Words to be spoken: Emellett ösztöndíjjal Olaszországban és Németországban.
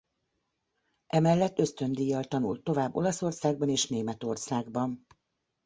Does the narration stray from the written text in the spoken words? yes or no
yes